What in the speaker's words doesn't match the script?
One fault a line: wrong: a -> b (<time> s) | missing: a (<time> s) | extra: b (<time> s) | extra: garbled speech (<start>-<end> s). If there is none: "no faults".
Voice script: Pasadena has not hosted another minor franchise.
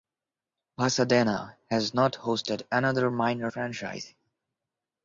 no faults